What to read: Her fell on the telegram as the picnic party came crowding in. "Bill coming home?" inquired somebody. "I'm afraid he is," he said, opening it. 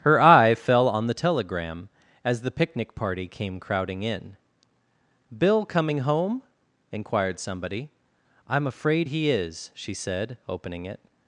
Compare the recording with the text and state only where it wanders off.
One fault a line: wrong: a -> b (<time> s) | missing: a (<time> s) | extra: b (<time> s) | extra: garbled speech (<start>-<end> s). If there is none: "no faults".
extra: eye (0.2 s)
wrong: he -> she (9.7 s)